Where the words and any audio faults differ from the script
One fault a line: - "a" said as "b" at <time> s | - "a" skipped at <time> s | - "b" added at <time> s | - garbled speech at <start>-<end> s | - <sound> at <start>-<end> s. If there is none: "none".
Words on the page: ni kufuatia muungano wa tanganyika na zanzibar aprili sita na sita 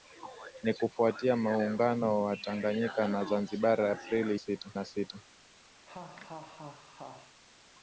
- laugh at 5.9-7.4 s